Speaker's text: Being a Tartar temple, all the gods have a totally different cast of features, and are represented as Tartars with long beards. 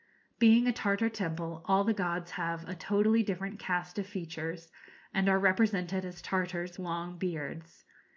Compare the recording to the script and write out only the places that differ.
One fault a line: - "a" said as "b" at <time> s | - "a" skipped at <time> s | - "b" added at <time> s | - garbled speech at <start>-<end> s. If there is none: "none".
- "with" skipped at 6.8 s